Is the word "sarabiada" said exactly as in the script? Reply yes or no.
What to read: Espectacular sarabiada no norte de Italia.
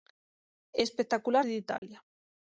no